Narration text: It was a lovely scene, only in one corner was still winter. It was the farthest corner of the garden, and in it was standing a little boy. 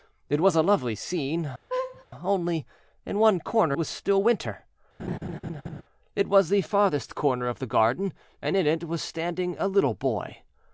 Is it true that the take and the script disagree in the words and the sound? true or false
true